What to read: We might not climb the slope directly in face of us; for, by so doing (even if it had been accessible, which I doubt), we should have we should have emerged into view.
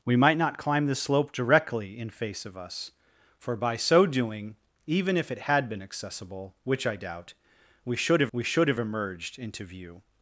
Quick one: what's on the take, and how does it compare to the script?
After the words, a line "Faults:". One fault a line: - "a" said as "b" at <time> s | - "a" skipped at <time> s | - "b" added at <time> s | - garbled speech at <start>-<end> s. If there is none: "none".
We might not climb the slope directly in face of us; for, by so doing (even if it had been accessible, which I doubt), we should have we should have emerged into view.
Faults:
none